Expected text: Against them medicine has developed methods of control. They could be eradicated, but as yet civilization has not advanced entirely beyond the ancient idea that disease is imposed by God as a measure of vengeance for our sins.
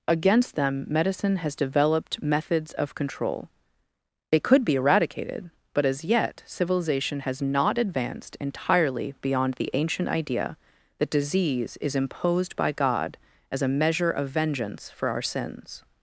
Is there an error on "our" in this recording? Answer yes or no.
no